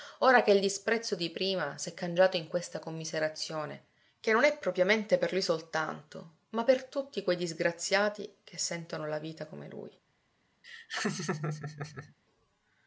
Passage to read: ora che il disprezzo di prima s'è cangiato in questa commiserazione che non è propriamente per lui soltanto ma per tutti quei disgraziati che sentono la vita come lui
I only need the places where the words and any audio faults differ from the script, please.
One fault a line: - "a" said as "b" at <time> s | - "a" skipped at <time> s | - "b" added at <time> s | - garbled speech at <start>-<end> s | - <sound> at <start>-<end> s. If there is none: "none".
- laugh at 10.6-12.1 s